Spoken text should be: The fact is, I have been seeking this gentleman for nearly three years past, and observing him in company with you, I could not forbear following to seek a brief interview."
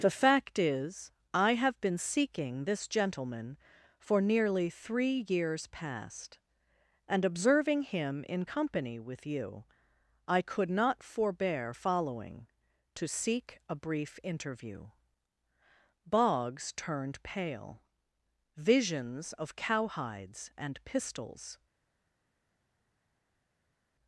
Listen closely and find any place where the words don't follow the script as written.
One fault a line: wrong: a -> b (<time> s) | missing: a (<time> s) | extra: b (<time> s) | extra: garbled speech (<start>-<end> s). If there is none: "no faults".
extra: Boggs turned pale Visions of cowhides and pistols (16.1 s)